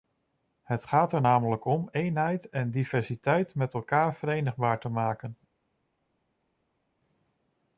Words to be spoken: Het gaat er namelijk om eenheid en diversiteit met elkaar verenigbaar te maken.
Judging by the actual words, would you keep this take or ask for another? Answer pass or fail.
pass